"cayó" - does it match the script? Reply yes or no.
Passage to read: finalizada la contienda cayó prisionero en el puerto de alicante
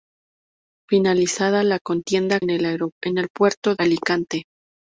no